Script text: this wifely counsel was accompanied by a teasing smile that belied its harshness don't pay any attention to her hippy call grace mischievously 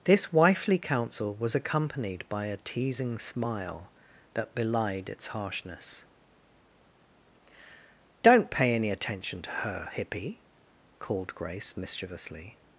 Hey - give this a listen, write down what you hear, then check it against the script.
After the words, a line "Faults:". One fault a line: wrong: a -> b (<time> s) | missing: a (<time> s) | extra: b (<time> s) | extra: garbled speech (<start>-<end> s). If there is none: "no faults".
this wifely counsel was accompanied by a teasing smile that belied its harshness don't pay any attention to her hippy called grace mischievously
Faults:
wrong: call -> called (11.0 s)